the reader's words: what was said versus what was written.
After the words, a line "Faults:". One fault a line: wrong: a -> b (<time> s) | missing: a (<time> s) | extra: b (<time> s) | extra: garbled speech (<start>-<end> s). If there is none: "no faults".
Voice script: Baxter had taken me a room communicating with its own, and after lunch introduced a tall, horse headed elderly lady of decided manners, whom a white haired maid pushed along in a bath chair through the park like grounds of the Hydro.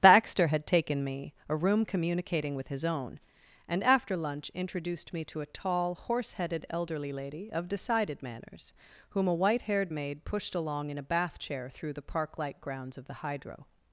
Baxter had taken me a room communicating with his own, and after lunch introduced me to a tall, horse headed elderly lady of decided manners, whom a white haired maid pushed along in a bath chair through the park like grounds of the Hydro.
Faults:
wrong: its -> his (2.7 s)
extra: me to (5.1 s)